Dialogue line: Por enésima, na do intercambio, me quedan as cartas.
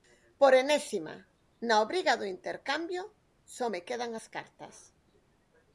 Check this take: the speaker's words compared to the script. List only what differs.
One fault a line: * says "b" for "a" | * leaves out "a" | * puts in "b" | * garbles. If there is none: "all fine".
* puts in "obriga"
* puts in "só"